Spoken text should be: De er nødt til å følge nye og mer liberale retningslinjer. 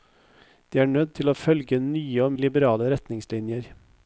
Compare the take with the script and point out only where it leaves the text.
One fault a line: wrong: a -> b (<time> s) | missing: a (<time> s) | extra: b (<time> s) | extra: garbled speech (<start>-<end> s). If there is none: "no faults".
missing: mer (2.3 s)